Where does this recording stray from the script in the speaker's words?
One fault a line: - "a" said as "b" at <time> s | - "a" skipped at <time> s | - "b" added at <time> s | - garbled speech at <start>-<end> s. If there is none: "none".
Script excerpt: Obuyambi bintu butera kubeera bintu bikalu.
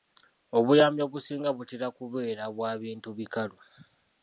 - "bintu" said as "obusinga" at 1.1 s
- "bwa" added at 2.5 s